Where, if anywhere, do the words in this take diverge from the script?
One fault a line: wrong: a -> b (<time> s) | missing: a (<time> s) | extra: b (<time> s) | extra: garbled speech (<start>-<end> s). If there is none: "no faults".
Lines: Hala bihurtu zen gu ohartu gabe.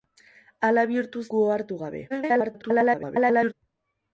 missing: zen (1.2 s)
extra: garbled speech (2.1-3.5 s)